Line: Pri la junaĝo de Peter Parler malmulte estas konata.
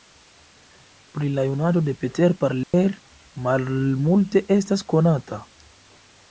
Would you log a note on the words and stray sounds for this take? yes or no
yes